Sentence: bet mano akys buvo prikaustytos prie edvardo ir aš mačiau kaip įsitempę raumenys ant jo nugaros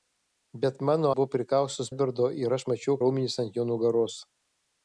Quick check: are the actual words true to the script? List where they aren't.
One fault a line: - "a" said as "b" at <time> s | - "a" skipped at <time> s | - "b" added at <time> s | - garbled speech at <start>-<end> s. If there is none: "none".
- "akys" skipped at 1.1 s
- "prie" skipped at 1.9 s
- "kaip įsitempę" skipped at 3.0 s